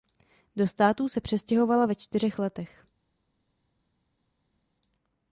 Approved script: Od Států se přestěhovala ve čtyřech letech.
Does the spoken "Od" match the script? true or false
false